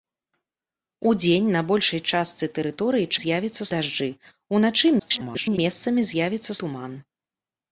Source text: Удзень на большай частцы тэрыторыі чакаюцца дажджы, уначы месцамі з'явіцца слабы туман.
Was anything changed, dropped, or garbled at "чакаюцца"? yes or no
yes